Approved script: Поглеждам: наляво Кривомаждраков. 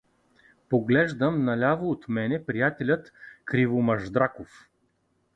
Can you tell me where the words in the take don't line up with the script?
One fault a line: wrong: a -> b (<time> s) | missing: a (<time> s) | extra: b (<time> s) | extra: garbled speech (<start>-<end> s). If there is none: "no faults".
extra: от мене приятелят (1.9 s)